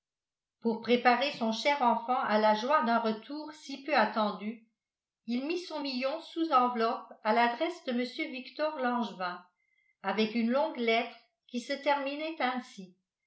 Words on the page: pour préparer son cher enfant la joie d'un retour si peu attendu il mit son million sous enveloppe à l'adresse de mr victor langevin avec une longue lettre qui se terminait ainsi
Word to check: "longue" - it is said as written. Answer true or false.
true